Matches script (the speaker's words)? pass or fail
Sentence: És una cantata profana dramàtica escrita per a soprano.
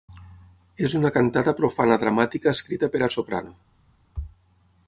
pass